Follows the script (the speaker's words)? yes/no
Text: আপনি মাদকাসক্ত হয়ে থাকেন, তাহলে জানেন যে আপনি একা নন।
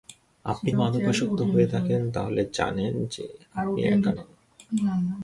yes